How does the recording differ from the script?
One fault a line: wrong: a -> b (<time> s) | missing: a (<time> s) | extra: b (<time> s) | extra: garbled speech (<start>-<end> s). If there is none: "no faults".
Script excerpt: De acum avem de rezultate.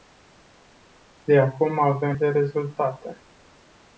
no faults